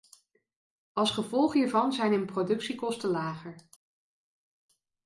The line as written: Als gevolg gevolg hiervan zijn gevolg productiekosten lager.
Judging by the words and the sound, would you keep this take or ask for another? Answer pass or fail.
fail